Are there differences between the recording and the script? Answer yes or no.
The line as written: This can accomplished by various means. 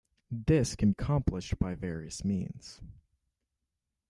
no